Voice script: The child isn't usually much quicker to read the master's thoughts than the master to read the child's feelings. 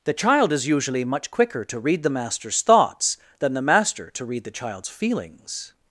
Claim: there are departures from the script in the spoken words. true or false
true